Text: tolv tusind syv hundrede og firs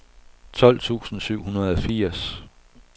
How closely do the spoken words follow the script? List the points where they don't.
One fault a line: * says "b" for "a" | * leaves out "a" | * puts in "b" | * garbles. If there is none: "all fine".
all fine